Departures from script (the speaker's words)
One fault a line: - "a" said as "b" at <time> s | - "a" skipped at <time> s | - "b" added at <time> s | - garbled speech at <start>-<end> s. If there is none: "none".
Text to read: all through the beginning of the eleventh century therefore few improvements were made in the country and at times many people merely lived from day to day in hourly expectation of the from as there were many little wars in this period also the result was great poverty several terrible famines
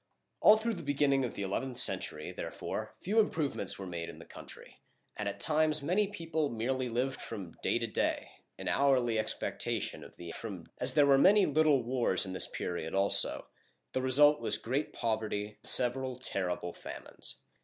none